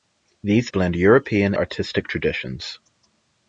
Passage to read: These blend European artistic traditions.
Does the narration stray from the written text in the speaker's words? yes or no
no